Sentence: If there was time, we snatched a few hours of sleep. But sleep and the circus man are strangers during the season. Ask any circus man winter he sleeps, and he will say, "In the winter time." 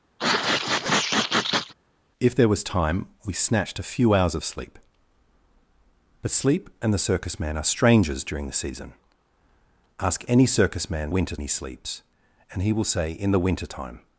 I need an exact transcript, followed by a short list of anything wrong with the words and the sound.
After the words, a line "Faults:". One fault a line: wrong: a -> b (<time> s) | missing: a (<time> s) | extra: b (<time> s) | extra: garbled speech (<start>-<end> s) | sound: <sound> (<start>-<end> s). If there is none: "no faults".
If there was time, we snatched a few hours of sleep. But sleep and the circus man are strangers during the season. Ask any circus man winter he sleeps, and he will say, "In the winter time."
Faults:
sound: sneeze (0.2-1.7 s)